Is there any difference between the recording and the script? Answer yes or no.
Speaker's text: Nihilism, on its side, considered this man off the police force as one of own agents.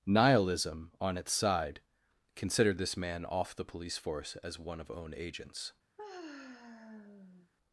no